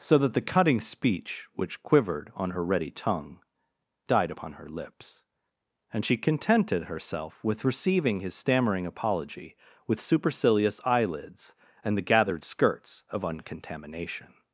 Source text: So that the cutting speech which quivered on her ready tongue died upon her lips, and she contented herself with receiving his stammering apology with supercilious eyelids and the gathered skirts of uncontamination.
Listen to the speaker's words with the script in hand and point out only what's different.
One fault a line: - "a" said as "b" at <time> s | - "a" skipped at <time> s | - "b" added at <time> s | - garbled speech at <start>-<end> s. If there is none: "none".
none